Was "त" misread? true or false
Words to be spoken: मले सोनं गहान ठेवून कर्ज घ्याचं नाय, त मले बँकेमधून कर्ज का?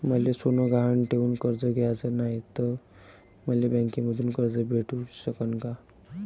false